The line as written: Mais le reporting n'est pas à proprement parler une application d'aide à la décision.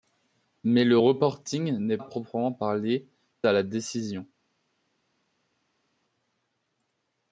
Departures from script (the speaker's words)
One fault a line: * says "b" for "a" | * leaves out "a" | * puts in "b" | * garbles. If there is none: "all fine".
* leaves out "pas"
* leaves out "une application d'aide"